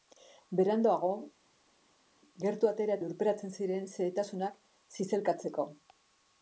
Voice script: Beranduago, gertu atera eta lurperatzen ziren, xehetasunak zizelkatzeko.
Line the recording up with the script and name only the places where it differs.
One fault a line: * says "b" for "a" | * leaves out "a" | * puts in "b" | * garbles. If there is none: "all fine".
* leaves out "eta"